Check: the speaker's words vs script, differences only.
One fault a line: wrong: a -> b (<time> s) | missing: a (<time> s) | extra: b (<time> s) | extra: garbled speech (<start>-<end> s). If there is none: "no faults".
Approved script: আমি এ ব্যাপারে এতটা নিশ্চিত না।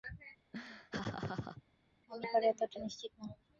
missing: এ (2.3 s)